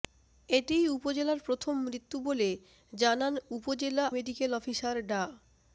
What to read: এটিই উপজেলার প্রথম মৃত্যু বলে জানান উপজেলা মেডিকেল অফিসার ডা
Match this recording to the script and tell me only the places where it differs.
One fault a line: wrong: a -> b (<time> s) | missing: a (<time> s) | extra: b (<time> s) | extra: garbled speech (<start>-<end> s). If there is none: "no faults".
no faults